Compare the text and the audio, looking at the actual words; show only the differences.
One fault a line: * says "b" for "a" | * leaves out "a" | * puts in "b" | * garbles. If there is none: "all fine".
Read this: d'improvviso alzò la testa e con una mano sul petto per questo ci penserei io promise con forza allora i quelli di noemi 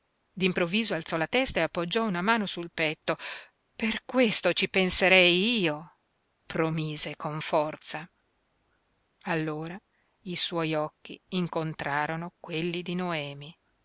* says "appoggiò" for "con"
* puts in "suoi occhi incontrarono"